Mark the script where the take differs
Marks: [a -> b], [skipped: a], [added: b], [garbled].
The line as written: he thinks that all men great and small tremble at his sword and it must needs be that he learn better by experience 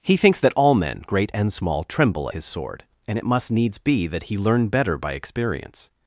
he thinks that all men great and small tremble [skipped: at] his sword and it must needs be that he learn better by experience